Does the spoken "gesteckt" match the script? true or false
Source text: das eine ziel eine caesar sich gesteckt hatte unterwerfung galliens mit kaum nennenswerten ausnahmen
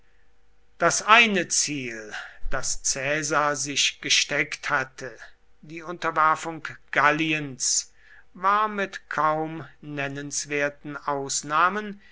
true